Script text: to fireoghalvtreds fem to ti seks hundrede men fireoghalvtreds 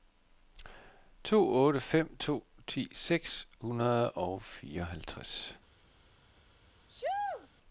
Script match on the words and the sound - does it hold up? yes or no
no